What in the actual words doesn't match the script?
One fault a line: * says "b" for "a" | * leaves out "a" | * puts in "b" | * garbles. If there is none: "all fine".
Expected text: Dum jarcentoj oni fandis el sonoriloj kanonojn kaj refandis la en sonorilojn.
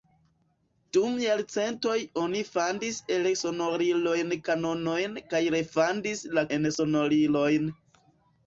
all fine